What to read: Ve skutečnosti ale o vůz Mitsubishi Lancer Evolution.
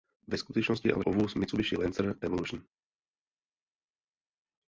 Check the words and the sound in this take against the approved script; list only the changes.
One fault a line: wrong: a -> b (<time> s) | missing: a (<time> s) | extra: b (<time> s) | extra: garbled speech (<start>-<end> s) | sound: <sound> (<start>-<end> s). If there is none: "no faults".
no faults